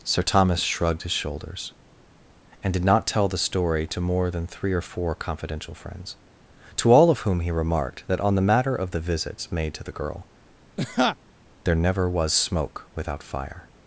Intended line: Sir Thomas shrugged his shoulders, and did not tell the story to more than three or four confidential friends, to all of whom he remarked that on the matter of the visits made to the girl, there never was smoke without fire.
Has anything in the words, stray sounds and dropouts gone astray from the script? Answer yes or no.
yes